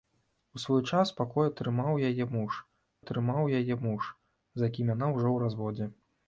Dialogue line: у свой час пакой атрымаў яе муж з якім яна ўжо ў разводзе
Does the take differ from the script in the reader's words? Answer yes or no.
yes